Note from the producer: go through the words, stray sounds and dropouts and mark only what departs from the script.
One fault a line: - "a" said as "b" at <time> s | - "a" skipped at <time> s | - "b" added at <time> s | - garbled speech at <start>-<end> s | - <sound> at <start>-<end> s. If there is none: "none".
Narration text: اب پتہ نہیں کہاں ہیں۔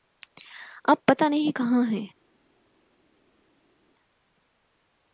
none